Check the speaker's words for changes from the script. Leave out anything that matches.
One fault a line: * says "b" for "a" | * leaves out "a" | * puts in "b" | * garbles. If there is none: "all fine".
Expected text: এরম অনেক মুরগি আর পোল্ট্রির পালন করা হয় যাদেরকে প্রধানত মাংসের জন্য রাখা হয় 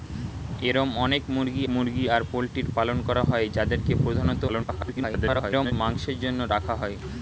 * puts in "মুরগি"
* garbles